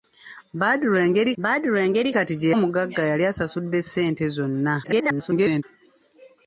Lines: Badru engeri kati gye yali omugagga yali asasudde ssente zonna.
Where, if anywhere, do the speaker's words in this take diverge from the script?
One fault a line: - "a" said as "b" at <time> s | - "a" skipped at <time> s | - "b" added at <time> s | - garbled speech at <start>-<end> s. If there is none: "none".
- "badru engeri" added at 1.4 s
- "yali" skipped at 2.5 s
- garbled speech at 4.8-5.6 s